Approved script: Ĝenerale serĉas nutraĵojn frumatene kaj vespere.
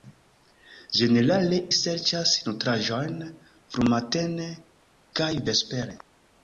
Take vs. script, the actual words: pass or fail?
pass